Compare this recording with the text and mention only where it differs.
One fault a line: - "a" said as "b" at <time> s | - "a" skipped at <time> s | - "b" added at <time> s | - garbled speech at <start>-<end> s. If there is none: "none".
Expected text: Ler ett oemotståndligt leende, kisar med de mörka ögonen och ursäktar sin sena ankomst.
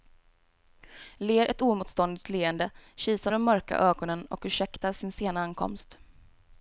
- "med" skipped at 3.3 s